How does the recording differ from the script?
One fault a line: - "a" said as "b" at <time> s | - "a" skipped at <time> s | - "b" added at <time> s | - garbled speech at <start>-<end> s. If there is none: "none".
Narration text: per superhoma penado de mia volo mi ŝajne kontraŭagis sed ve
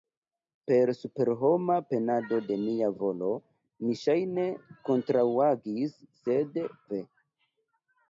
none